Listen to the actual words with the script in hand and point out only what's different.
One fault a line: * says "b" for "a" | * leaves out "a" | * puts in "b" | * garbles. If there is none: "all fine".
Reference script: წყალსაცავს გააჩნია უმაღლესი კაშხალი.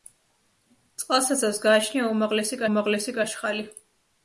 * puts in "უმაღლესი"